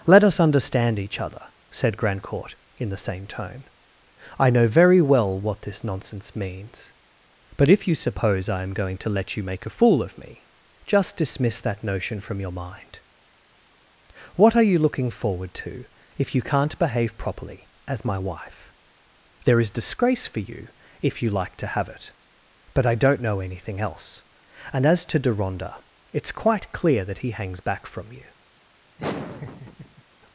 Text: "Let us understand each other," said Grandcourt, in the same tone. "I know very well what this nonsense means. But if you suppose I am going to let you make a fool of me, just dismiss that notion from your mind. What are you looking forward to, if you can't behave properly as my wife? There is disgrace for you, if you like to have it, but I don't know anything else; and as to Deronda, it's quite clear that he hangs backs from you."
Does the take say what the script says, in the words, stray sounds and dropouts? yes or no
no